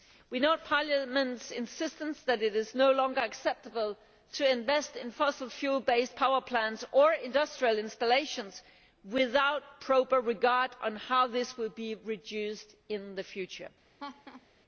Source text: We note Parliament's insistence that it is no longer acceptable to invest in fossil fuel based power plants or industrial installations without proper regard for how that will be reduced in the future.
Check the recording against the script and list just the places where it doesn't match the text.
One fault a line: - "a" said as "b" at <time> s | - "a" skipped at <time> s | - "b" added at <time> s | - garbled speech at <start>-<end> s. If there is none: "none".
- "that" said as "this" at 11.3 s